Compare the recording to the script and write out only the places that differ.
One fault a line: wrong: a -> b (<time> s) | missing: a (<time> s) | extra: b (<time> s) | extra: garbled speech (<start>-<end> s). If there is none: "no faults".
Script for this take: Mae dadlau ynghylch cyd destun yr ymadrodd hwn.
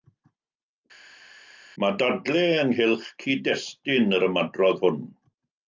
no faults